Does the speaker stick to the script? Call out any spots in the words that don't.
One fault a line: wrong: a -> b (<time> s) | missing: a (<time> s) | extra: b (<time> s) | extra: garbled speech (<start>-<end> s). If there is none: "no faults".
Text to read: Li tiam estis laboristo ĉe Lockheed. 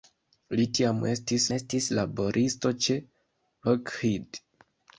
extra: estis (1.6 s)